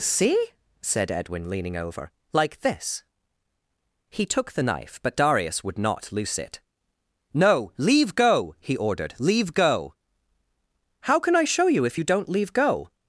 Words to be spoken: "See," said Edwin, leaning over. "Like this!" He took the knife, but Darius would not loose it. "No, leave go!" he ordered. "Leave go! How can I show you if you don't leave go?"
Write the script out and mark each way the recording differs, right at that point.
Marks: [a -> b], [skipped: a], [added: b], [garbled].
"See," said Edwin, leaning over. "Like this!" He took the knife, but Darius would not loose it. "No, leave go!" he ordered. "Leave go! How can I show you if you don't leave go?"